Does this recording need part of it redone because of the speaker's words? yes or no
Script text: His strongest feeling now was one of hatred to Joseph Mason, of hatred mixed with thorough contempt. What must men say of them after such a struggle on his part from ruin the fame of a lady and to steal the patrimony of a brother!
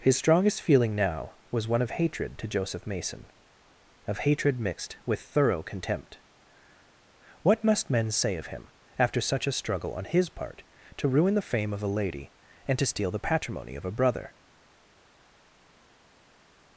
yes